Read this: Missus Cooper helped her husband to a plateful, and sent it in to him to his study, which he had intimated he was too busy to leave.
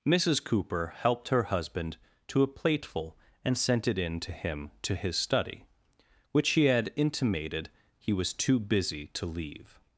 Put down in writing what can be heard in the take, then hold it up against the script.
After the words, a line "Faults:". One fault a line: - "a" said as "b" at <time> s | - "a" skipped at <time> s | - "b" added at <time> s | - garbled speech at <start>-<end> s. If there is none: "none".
Missus Cooper helped her husband to a plateful, and sent it in to him to his study, which he had intimated he was too busy to leave.
Faults:
none